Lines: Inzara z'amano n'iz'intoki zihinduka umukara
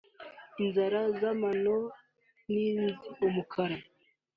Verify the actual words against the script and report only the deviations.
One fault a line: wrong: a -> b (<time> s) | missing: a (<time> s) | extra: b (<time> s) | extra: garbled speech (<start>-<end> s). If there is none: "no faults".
missing: n'iz'intoki zihinduka (1.8 s)